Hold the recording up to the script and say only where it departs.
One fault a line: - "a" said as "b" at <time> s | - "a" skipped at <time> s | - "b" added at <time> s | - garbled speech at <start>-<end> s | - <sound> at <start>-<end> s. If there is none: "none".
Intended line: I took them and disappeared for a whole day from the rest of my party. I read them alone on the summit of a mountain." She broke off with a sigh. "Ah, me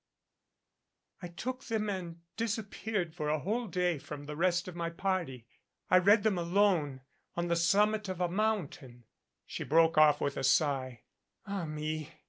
none